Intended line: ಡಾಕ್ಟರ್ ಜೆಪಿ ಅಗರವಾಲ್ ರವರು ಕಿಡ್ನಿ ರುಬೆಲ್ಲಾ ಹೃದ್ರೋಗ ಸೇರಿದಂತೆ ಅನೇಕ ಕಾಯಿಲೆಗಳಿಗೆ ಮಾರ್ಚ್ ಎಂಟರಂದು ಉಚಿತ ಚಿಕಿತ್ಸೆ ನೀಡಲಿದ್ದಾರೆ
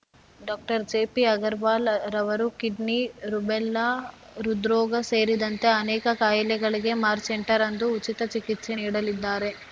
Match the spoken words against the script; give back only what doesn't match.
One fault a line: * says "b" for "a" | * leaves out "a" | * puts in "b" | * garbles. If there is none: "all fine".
all fine